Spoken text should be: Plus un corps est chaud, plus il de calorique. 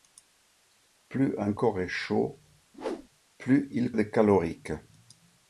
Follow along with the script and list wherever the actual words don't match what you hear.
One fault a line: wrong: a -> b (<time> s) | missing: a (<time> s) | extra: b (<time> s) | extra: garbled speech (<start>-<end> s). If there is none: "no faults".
no faults